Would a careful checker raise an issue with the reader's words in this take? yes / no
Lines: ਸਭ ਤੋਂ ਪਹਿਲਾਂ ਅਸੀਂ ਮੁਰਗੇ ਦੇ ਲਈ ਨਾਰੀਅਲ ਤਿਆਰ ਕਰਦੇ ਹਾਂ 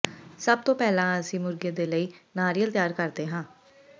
no